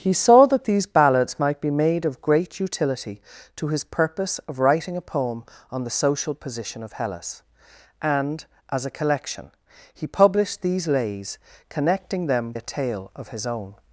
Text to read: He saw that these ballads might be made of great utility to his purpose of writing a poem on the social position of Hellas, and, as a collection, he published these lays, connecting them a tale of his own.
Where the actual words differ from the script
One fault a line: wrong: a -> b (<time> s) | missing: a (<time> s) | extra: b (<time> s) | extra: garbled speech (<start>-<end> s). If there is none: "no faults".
no faults